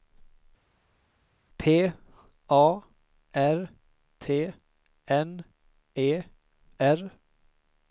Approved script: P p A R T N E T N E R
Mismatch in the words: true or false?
true